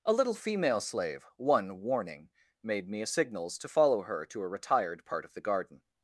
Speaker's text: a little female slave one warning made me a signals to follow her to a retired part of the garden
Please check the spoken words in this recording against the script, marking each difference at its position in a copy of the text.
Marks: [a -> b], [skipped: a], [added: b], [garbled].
a little female slave one warning made me a signals to follow her to a retired part of the garden